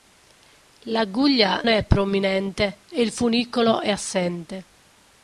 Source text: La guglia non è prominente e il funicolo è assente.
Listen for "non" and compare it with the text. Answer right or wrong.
wrong